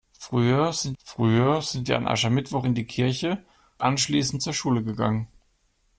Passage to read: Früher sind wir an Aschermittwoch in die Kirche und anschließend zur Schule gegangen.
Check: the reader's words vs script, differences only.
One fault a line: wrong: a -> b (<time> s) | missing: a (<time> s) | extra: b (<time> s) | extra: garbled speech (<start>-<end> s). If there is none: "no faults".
extra: früher sind (1.0 s)
missing: und (3.4 s)